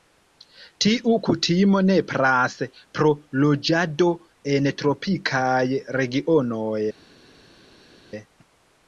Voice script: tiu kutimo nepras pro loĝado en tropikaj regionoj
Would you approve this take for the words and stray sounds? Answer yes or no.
yes